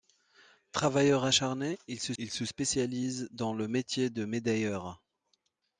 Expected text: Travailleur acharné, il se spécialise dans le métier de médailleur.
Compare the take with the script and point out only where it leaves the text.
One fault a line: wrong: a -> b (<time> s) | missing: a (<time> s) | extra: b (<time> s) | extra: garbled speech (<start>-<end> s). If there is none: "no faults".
extra: il se (2.2 s)